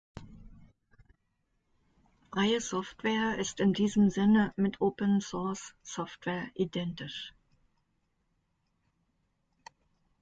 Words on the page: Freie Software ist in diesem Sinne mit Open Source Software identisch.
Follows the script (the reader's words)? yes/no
yes